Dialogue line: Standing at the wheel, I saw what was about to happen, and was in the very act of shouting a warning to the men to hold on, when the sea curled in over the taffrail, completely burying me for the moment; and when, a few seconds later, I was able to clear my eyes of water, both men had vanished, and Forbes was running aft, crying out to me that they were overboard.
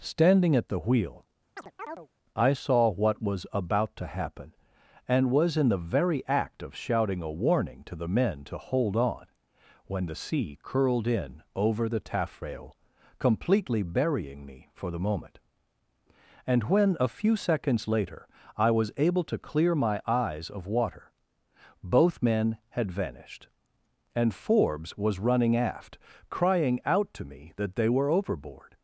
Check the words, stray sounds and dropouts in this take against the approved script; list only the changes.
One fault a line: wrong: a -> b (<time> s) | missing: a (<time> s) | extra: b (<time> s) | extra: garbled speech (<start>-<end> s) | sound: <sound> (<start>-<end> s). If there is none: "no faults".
sound: chirp (1.6-2.1 s)